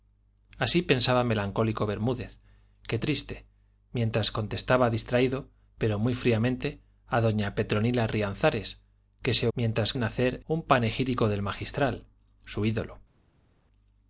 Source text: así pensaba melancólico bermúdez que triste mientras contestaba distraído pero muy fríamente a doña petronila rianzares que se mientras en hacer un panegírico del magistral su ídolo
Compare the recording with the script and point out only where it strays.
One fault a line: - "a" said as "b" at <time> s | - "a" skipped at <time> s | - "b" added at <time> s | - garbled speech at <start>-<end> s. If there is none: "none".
none